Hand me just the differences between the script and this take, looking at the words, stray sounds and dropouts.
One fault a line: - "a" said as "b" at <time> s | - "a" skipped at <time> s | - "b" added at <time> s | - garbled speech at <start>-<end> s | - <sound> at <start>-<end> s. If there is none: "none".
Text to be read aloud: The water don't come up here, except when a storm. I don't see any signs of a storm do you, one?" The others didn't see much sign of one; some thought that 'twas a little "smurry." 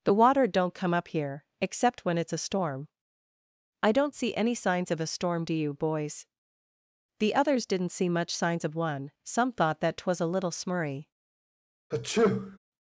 - "it's" added at 2.2 s
- "one" said as "boys" at 5.8 s
- "sign" said as "signs" at 8.3 s
- sneeze at 11.9-12.6 s